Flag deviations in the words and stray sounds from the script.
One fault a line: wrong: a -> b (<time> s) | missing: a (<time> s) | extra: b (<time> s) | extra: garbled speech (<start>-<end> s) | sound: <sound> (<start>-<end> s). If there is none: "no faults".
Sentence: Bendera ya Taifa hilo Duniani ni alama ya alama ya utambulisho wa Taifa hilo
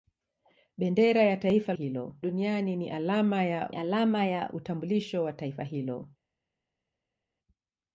no faults